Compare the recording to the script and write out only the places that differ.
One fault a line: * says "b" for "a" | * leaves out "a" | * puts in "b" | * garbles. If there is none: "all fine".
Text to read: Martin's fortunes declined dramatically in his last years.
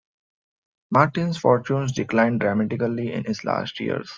all fine